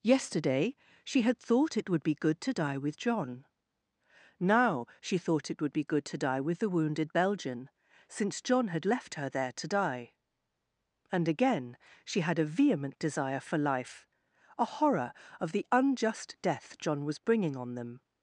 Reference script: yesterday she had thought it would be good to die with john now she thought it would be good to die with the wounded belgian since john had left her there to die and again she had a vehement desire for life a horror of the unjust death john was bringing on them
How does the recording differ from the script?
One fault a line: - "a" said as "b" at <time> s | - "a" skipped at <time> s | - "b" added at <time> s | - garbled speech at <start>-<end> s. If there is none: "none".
none